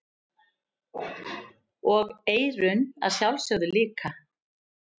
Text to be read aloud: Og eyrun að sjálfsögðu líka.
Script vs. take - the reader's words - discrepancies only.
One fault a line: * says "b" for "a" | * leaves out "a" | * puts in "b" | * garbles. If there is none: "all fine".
all fine